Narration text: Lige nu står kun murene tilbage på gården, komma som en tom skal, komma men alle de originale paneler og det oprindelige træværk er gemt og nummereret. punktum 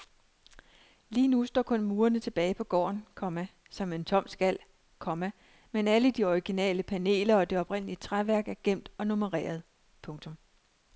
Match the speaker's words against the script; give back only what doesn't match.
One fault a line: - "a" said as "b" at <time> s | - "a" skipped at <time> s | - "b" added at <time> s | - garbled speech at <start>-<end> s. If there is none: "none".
none